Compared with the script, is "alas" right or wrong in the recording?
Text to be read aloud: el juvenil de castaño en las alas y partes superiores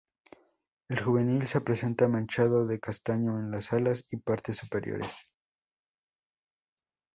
right